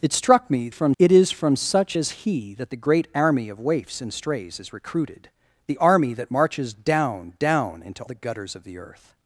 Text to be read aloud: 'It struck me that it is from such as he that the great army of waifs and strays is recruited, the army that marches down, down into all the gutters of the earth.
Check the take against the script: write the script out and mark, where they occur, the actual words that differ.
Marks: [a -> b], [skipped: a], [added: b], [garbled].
'It struck me [that -> from] it is from such as he that the great army of waifs and strays is recruited, the army that marches down, down into [skipped: all] the gutters of the earth.